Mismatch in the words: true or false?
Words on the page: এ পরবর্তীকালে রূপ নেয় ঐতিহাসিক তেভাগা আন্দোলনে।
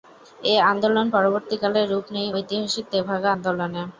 true